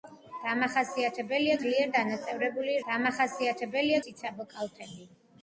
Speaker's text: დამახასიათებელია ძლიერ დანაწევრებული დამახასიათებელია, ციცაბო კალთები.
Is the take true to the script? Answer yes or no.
yes